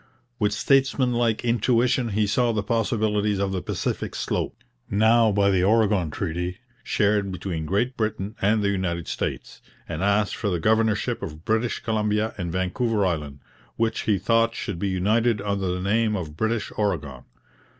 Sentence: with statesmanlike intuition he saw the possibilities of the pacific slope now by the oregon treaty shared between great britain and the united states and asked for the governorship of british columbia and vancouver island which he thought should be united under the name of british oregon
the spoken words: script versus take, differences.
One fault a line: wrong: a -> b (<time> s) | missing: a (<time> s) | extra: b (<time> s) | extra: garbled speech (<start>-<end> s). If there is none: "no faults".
no faults